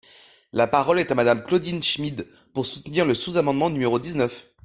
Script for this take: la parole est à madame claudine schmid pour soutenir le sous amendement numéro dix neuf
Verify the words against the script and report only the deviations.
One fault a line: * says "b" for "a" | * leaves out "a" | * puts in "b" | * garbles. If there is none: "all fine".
all fine